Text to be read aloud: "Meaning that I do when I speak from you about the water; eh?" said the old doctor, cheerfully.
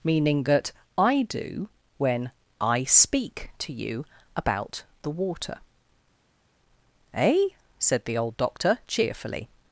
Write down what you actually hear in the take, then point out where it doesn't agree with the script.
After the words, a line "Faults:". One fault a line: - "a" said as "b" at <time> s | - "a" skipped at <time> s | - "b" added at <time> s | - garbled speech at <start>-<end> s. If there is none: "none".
"Meaning that I do when I speak to you about the water; eh?" said the old doctor, cheerfully.
Faults:
- "from" said as "to" at 3.6 s